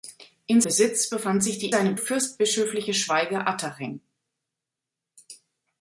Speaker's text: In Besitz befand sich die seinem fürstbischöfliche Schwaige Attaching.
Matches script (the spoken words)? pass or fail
pass